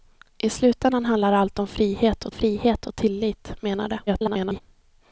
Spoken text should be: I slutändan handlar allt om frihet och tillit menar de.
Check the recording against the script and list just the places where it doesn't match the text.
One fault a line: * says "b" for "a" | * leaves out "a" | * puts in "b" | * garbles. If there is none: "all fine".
* puts in "frihet och"
* garbles